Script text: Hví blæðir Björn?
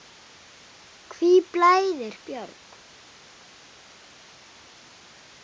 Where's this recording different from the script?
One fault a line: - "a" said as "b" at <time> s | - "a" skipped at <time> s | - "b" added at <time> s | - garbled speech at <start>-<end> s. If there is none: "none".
none